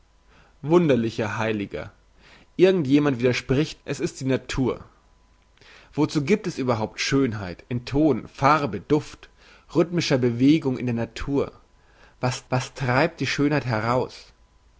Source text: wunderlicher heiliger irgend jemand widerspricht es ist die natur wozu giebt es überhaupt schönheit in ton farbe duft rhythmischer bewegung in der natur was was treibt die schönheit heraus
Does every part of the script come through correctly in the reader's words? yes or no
yes